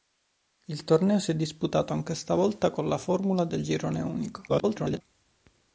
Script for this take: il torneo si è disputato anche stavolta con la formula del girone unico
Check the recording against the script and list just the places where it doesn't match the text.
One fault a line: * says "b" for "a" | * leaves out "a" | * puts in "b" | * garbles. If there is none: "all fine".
* garbles